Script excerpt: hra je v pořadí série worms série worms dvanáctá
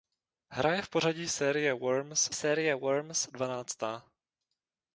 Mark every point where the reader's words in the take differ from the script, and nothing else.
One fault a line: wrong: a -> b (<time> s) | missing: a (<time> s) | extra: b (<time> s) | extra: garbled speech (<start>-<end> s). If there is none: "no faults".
no faults